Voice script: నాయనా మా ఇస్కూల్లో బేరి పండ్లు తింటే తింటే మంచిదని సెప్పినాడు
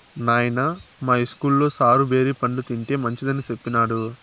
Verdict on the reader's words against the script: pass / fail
fail